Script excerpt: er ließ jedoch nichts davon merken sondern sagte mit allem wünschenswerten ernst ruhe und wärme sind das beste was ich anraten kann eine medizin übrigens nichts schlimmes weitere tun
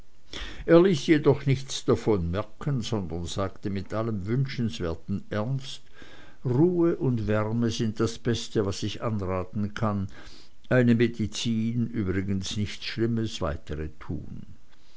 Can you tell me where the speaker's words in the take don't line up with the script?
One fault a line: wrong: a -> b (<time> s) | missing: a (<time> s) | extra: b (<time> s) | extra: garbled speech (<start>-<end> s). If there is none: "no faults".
no faults